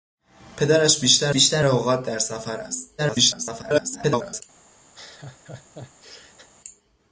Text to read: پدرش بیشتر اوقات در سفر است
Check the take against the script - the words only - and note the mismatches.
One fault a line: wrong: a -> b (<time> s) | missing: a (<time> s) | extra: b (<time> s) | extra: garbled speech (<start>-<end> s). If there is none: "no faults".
extra: بیشتر (1.3 s)
extra: garbled speech (3.0-4.4 s)